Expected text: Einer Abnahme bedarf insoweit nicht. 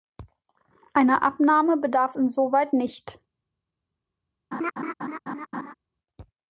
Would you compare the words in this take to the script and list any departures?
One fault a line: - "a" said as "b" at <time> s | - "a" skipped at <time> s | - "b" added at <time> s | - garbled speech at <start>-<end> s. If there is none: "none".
none